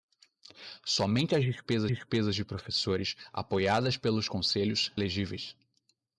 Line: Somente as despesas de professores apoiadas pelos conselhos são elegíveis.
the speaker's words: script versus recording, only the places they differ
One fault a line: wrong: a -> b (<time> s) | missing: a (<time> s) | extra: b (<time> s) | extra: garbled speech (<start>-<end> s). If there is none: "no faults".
extra: despesas (1.9 s)
missing: são (4.9 s)